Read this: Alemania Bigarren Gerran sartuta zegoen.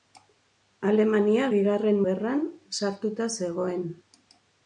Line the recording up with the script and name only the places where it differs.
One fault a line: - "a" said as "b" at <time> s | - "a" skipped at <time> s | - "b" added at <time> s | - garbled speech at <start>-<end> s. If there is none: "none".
none